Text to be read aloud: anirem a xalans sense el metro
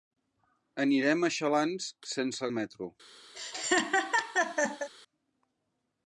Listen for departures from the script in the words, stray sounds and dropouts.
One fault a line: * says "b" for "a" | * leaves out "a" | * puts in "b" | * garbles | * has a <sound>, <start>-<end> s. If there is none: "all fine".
* has a laugh, 3.3-4.9 s